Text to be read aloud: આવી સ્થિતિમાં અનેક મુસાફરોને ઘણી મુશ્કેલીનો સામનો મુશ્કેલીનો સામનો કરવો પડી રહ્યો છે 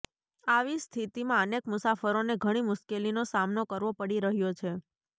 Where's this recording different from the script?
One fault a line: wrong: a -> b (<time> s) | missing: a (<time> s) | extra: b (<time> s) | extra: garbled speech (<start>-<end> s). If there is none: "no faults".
missing: મુશ્કેલીનો સામનો (3.7 s)